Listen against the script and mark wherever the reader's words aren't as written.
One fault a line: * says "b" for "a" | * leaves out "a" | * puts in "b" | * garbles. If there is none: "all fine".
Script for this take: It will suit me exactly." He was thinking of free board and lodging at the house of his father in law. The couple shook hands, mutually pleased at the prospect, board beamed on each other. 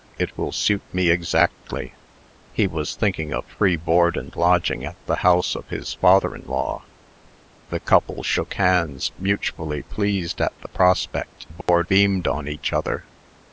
all fine